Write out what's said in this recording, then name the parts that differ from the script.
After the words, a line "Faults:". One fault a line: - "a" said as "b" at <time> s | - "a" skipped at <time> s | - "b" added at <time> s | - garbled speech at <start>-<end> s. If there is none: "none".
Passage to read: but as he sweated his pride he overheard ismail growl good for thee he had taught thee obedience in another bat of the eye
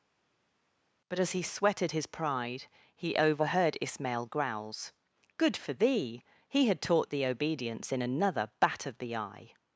but as he sweated his pride he overheard ismail growls good for thee he had taught thee obedience in another bat of the eye
Faults:
- "growl" said as "growls" at 4.3 s